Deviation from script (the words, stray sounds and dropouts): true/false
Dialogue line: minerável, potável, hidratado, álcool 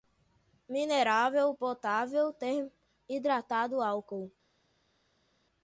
false